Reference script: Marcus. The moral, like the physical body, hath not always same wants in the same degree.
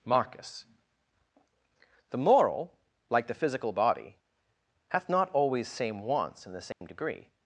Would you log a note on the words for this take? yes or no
no